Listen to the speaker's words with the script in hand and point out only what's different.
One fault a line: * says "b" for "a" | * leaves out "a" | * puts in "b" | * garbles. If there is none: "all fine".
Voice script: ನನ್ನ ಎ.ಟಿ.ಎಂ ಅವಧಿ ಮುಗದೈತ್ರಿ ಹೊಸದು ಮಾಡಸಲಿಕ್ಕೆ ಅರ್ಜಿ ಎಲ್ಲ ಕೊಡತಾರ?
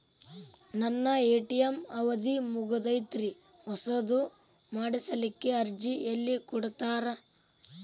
all fine